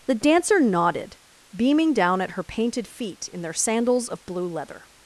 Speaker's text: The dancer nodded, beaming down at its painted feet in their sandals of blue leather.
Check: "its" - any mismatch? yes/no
yes